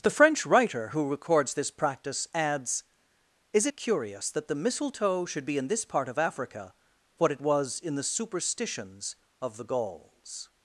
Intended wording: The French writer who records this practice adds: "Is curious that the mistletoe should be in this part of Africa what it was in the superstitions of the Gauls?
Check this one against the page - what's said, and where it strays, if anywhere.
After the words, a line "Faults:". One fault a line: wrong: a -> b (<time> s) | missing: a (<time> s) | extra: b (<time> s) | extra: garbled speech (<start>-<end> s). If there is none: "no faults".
The French writer who records this practice adds: "Is curious that the mistletoe should be in this part of Africa what it was in the superstitions of the Gauls?
Faults:
no faults